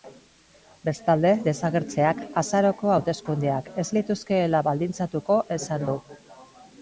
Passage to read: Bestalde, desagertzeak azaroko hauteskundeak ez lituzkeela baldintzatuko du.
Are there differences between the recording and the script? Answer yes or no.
yes